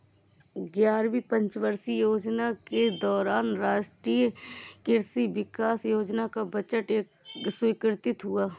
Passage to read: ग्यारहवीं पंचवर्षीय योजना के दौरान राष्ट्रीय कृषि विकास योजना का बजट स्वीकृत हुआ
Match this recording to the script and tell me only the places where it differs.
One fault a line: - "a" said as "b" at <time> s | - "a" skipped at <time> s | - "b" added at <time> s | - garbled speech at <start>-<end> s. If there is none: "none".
none